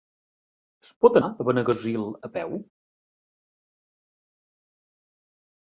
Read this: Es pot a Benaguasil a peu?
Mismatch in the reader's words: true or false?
false